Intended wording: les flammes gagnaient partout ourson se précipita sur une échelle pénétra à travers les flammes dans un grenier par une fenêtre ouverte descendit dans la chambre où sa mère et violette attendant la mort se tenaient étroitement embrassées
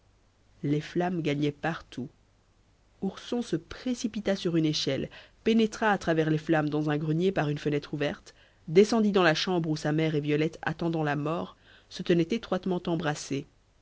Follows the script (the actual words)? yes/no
yes